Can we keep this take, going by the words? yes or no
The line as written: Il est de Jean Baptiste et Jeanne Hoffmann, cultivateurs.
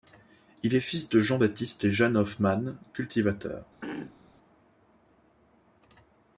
no